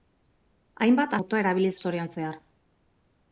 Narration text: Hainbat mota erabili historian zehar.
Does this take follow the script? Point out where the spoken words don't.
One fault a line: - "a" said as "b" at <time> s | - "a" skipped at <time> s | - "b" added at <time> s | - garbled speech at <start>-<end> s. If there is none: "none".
none